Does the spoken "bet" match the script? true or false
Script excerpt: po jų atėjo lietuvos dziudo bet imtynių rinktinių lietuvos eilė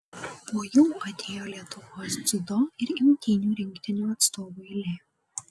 false